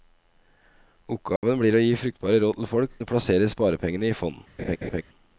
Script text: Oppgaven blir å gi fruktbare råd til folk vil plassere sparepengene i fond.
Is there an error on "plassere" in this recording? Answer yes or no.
no